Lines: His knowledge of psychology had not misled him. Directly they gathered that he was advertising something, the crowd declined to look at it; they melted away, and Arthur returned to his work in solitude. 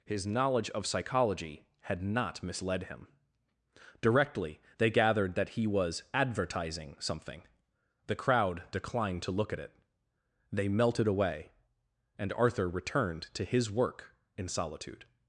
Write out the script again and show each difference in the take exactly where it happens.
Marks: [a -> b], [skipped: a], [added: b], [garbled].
His knowledge of psychology had not misled him. Directly they gathered that he was advertising something, the crowd declined to look at it; they melted away, and Arthur returned to his work in solitude.